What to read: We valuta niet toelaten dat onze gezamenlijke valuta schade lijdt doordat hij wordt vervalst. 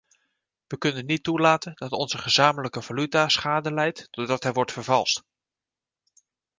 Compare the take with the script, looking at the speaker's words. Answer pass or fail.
fail